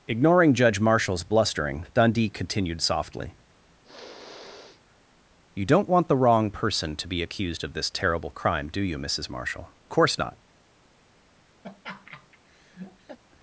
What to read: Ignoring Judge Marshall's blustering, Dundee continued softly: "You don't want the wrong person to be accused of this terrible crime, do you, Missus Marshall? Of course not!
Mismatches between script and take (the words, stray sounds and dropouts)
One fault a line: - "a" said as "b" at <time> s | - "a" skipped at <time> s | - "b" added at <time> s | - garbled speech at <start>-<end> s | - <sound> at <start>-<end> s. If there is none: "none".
- sniff at 3.8-5.0 s
- "Of" skipped at 9.7 s
- laugh at 11.6-13.2 s